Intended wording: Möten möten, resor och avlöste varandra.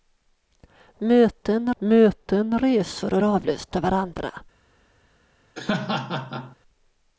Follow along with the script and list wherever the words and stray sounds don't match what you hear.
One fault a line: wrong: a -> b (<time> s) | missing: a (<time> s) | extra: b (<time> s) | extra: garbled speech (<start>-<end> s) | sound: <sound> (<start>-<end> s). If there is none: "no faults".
sound: laugh (5.6-6.6 s)